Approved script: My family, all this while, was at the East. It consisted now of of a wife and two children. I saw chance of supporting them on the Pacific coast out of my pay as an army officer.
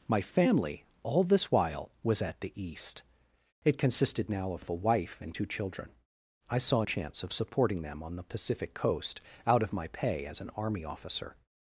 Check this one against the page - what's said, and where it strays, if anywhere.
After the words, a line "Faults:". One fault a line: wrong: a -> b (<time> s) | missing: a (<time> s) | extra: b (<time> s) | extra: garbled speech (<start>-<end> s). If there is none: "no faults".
My family, all this while, was at the East. It consisted now of of a wife and two children. I saw chance of supporting them on the Pacific coast out of my pay as an army officer.
Faults:
no faults